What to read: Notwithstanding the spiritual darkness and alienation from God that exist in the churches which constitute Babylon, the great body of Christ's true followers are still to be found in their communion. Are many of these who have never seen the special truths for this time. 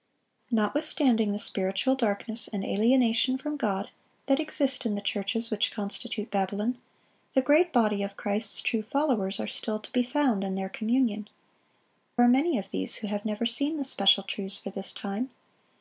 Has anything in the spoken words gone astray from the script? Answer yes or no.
no